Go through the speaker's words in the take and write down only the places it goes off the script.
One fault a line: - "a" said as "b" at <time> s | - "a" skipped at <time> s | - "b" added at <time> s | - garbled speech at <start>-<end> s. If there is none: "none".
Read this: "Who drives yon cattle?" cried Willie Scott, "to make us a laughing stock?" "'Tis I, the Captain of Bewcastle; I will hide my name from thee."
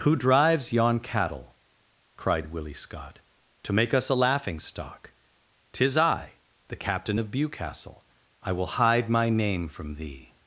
none